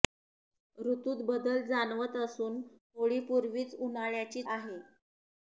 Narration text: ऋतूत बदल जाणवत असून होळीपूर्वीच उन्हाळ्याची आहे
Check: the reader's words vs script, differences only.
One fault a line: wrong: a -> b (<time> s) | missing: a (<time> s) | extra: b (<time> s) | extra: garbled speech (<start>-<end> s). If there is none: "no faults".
no faults